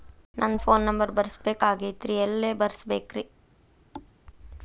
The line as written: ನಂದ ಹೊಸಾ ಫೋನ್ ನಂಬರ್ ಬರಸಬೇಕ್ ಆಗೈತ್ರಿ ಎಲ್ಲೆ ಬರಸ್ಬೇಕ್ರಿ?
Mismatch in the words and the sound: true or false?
true